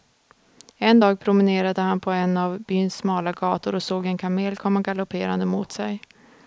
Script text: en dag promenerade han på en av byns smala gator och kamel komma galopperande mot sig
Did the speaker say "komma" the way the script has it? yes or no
yes